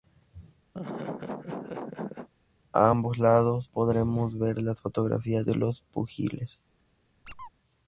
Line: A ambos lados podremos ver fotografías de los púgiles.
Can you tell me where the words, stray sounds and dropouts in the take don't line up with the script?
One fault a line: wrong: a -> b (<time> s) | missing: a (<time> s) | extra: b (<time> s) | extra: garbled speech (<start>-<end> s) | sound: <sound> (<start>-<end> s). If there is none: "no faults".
sound: laugh (0.7-2.3 s)
extra: las (4.6 s)
sound: squeak (7.2-7.5 s)